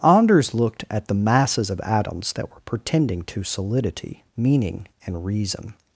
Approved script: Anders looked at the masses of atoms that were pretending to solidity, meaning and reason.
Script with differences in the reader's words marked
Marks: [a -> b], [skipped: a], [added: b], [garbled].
Anders looked at the masses of atoms that were pretending to solidity, meaning and reason.